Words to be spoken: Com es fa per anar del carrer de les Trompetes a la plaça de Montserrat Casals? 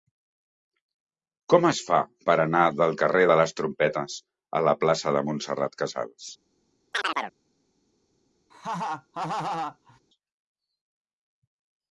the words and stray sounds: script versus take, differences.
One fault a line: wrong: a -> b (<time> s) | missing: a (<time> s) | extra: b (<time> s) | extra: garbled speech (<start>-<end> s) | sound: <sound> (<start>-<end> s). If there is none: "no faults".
sound: chirp (6.9-7.4 s)
sound: laugh (8.5-10.0 s)